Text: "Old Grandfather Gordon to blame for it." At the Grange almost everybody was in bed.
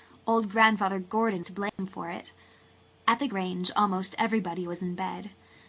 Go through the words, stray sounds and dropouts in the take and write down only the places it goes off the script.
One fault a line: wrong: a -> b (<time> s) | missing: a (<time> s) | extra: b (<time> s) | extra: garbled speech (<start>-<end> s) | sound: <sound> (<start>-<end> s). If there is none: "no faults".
sound: dropout (1.7-1.8 s)